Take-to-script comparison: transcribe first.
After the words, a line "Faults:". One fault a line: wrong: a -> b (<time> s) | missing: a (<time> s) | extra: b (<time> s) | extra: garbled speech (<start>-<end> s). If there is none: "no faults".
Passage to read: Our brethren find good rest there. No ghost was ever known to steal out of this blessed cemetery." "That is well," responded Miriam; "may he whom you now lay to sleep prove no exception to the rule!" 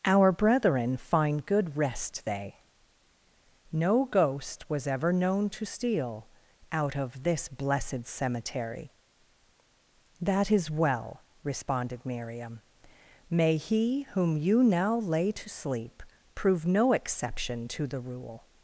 Our brethren find good rest they. No ghost was ever known to steal out of this blessed cemetery." "That is well," responded Miriam; "may he whom you now lay to sleep prove no exception to the rule!"
Faults:
wrong: there -> they (2.2 s)